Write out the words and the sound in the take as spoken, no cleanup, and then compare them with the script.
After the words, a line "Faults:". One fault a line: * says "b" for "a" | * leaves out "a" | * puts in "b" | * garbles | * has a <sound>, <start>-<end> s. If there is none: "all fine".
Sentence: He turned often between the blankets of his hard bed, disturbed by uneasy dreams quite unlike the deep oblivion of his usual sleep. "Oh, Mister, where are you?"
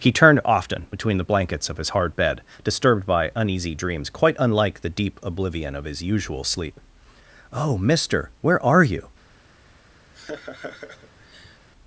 He turned often between the blankets of his hard bed, disturbed by uneasy dreams quite unlike the deep oblivion of his usual sleep. "Oh, Mister, where are you?"
Faults:
* has a laugh, 10.1-11.7 s